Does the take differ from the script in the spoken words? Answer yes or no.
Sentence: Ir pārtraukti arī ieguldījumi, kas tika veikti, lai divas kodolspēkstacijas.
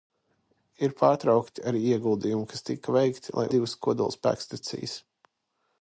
no